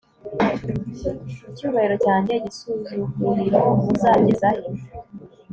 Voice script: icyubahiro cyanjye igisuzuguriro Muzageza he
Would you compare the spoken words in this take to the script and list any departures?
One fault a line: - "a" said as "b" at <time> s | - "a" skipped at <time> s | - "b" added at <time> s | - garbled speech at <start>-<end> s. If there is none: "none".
none